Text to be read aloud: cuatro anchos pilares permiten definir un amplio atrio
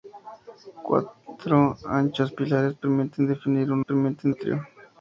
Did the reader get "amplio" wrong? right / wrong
wrong